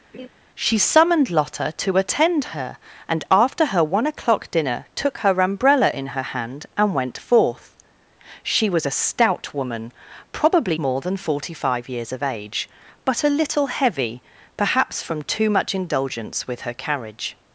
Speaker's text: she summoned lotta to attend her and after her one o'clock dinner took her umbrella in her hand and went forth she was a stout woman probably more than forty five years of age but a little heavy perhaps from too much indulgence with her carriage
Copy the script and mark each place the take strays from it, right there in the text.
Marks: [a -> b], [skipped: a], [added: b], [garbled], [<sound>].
[laugh] she summoned lotta to attend her and after her one o'clock dinner took her umbrella in her hand and went forth she was a stout woman probably more than forty five years of age but a little heavy perhaps from too much indulgence with her carriage